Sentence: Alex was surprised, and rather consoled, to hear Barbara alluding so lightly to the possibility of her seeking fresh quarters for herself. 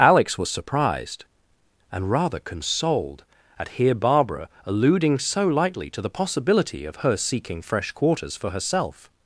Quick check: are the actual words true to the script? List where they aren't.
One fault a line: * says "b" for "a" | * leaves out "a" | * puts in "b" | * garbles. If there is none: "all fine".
* says "at" for "to"